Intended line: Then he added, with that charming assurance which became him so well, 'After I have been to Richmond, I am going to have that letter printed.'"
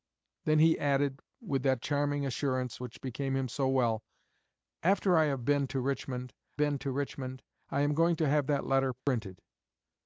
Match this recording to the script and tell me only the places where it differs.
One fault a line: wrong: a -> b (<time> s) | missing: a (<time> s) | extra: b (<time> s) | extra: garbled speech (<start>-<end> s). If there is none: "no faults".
extra: been to Richmond (6.6 s)